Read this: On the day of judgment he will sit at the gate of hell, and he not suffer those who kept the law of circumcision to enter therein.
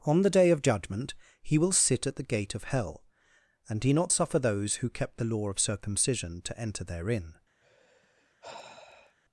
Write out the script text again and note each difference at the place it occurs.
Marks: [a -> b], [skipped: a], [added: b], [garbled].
On the day of judgment he will sit at the gate of hell, and he not suffer those who kept the law of circumcision to enter therein.